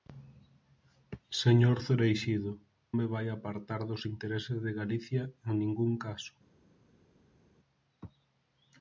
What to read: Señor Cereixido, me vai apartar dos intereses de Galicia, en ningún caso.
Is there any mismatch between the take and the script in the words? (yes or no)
no